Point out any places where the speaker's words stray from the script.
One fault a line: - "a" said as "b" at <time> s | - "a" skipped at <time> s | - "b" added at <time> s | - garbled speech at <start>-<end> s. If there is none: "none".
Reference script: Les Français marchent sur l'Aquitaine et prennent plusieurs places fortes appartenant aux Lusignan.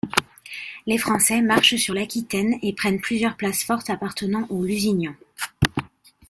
none